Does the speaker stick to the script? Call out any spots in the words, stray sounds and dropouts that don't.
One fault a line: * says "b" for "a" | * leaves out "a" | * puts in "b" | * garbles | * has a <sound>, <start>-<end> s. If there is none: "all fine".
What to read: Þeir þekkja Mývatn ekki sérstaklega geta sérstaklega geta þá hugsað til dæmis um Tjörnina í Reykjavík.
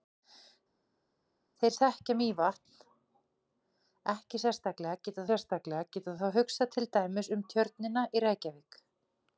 all fine